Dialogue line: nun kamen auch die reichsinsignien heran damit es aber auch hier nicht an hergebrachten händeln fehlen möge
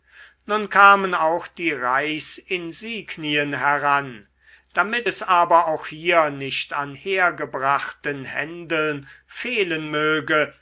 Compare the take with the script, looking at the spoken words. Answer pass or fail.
pass